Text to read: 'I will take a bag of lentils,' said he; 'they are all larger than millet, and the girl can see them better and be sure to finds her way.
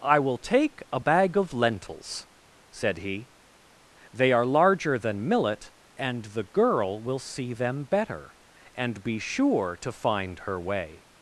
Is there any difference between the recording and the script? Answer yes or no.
yes